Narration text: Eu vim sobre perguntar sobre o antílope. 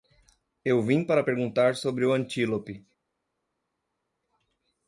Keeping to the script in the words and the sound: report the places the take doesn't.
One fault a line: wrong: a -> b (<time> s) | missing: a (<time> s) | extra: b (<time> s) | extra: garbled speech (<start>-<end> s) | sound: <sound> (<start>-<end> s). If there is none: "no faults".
wrong: sobre -> para (1.0 s)